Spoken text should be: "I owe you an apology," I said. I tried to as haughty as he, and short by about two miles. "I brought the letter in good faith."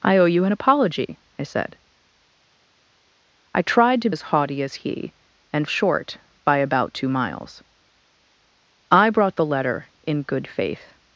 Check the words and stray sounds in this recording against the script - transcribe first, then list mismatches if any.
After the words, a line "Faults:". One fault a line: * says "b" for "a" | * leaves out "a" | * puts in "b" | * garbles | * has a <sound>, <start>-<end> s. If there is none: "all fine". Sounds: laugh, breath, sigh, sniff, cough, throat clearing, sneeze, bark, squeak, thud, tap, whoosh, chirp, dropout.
"I owe you an apology," I said. I tried to as haughty as he, and short by about two miles. "I brought the letter in good faith."
Faults:
all fine